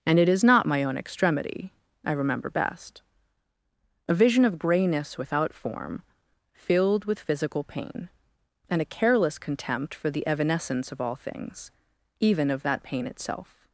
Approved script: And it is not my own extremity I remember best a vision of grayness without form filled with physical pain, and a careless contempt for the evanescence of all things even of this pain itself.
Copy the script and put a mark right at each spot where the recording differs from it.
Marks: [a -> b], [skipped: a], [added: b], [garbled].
And it is not my own extremity I remember best a vision of grayness without form filled with physical pain, and a careless contempt for the evanescence of all things even of [this -> that] pain itself.